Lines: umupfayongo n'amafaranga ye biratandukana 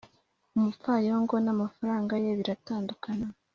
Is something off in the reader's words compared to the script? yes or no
no